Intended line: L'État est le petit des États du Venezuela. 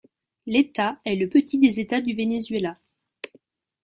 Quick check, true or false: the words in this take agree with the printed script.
true